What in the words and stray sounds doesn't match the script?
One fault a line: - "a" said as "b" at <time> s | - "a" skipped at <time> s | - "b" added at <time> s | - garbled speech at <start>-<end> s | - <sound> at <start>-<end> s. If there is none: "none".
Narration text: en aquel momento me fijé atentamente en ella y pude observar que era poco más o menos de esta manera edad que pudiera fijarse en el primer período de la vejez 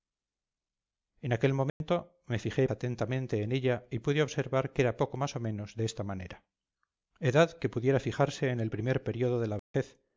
- dropout at 1.7-1.8 s
- dropout at 9.6-9.7 s